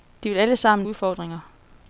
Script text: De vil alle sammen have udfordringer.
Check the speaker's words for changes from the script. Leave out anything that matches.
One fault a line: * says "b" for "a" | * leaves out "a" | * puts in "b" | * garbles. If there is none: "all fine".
* leaves out "have"